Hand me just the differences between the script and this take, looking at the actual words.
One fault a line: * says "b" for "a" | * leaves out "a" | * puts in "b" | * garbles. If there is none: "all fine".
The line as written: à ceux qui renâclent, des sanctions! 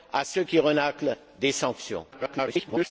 * garbles